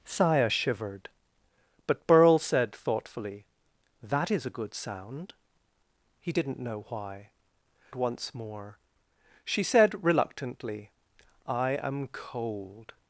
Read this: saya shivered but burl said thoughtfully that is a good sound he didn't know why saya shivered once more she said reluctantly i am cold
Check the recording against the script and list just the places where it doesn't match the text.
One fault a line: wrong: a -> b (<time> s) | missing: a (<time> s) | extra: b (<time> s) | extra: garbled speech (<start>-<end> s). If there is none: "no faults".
missing: saya shivered (7.3 s)